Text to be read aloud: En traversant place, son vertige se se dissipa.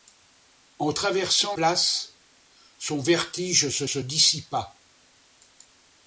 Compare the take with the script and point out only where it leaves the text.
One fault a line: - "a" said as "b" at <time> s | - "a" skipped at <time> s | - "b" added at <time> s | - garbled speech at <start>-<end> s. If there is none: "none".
none